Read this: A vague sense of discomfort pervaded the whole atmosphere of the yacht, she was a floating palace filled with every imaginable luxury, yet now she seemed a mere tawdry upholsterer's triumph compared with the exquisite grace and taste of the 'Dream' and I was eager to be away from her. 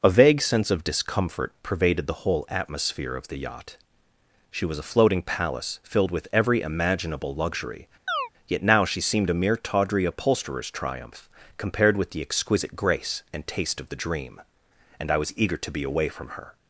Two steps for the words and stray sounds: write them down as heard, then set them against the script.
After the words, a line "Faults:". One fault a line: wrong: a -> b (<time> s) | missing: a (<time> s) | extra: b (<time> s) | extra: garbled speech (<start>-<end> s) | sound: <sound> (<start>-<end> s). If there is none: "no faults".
A vague sense of discomfort pervaded the whole atmosphere of the yacht, she was a floating palace filled with every imaginable luxury, yet now she seemed a mere tawdry upholsterer's triumph compared with the exquisite grace and taste of the 'Dream' and I was eager to be away from her.
Faults:
sound: chirp (8.1-8.3 s)